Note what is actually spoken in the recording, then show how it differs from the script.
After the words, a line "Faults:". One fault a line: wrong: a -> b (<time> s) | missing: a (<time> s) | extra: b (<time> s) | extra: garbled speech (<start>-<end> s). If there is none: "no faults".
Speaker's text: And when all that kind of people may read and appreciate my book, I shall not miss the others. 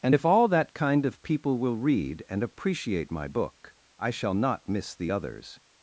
And if all that kind of people will read and appreciate my book, I shall not miss the others.
Faults:
wrong: when -> if (0.1 s)
wrong: may -> will (1.6 s)